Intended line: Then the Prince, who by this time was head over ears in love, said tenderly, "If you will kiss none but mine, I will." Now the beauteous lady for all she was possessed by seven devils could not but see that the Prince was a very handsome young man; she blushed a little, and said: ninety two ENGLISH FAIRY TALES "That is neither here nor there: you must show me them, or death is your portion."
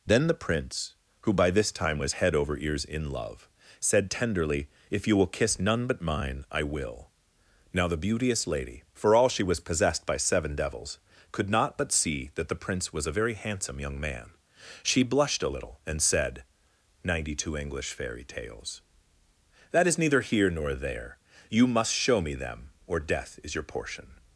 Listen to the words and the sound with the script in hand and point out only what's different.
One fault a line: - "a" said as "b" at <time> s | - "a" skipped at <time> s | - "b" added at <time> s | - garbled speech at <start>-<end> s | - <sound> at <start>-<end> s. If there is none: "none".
none